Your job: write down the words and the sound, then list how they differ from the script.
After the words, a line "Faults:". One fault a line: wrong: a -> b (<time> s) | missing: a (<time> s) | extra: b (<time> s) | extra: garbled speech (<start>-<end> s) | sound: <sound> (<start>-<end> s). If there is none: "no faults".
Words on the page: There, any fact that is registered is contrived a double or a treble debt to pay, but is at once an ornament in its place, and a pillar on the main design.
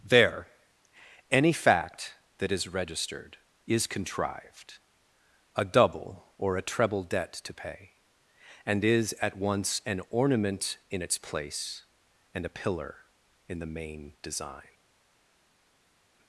There, any fact that is registered is contrived a double or a treble debt to pay, and is at once an ornament in its place, and a pillar in the main design.
Faults:
wrong: but -> and (8.6 s)
wrong: on -> in (13.5 s)